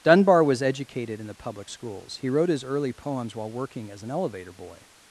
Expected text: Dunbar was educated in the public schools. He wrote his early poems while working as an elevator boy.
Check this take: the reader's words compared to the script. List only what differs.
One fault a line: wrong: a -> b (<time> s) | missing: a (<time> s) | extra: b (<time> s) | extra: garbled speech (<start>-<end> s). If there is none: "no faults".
no faults